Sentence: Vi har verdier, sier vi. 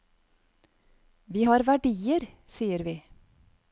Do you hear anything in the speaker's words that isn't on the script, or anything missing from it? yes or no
no